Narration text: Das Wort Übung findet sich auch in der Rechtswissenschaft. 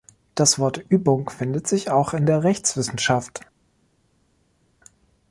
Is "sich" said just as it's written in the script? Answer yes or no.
yes